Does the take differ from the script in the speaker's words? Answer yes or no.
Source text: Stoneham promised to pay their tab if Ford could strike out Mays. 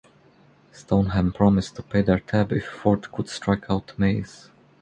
no